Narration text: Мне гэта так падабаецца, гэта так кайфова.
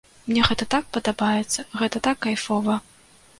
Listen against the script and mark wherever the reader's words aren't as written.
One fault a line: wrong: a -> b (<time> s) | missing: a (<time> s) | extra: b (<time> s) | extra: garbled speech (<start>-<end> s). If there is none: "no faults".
no faults